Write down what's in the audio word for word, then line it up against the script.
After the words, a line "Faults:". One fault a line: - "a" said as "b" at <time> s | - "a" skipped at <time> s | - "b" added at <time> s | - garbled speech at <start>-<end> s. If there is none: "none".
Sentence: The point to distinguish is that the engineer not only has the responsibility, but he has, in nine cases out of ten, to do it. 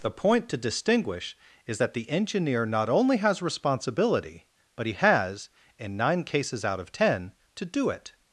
The point to distinguish is that the engineer not only has responsibility, but he has, in nine cases out of ten, to do it.
Faults:
- "the" skipped at 3.4 s